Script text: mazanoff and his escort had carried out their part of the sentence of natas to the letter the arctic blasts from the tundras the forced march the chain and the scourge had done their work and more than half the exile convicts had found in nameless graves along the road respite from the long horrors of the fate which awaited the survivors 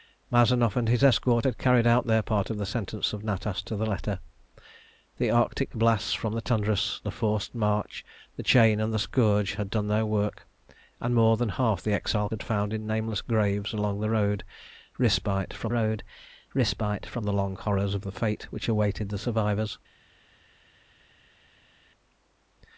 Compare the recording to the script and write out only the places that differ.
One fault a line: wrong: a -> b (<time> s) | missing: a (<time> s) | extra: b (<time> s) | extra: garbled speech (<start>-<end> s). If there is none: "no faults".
missing: convicts (12.3 s)
extra: road respite from (15.7 s)